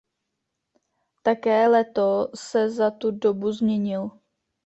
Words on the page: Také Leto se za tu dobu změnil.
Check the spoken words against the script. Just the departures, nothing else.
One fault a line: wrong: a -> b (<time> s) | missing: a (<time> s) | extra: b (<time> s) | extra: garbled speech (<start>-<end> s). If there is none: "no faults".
no faults